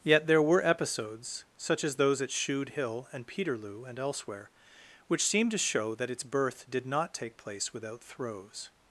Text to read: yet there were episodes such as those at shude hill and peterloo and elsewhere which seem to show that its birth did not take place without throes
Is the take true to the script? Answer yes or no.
yes